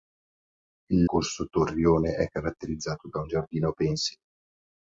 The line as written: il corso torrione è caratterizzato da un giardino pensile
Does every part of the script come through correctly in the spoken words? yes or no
yes